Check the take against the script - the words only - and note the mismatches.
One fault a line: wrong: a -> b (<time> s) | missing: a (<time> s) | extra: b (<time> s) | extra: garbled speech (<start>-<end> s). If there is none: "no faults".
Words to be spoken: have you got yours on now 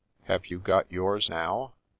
missing: on (1.3 s)